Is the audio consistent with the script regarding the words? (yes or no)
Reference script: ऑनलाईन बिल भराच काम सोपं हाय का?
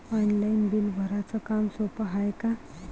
yes